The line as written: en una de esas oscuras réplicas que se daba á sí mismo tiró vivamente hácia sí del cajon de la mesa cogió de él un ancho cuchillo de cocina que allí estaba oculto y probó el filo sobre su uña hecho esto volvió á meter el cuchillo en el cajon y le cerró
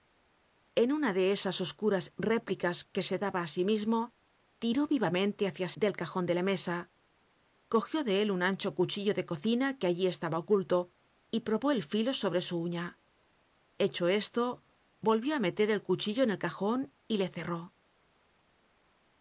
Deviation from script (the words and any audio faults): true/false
true